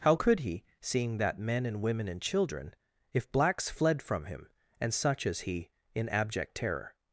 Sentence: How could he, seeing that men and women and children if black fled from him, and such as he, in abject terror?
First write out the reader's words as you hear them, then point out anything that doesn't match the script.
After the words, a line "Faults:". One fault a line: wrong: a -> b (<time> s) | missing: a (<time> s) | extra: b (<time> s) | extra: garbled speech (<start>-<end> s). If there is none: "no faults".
How could he, seeing that men and women and children if blacks fled from him, and such as he, in abject terror?
Faults:
wrong: black -> blacks (3.3 s)